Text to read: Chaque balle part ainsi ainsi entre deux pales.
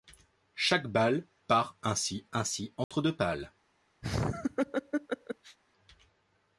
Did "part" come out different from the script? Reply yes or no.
no